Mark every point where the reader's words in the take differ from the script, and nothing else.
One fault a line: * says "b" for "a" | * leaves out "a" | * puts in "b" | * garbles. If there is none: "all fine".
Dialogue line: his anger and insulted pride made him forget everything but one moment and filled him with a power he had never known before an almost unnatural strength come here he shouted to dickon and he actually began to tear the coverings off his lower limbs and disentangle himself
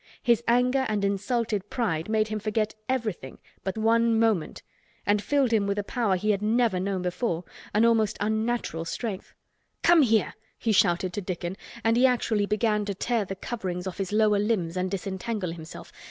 all fine